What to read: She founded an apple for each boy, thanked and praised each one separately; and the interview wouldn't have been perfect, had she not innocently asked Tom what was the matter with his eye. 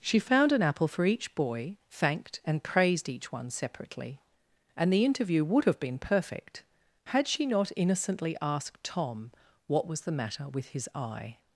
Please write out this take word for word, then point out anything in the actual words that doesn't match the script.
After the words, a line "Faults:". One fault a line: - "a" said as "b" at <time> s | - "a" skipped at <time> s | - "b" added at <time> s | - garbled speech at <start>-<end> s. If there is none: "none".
She found an apple for each boy, thanked and praised each one separately; and the interview would have been perfect, had she not innocently asked Tom what was the matter with his eye.
Faults:
- "founded" said as "found" at 0.2 s
- "wouldn't" said as "would" at 5.5 s